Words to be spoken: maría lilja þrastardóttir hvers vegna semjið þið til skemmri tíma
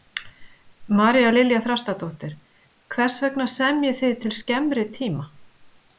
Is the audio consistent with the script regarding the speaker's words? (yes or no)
yes